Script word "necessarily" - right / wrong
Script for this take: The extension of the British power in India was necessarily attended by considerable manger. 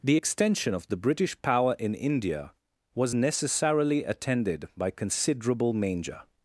right